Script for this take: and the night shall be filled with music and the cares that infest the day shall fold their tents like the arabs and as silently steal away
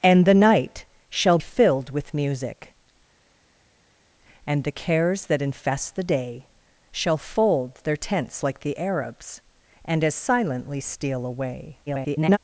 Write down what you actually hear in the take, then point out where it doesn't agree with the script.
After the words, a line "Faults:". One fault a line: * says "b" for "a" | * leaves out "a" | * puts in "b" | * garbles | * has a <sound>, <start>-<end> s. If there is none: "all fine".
and the night shall filled with music and the cares that infest the day shall fold their tents like the arabs and as silently steal away [garbled]
Faults:
* leaves out "be"
* garbles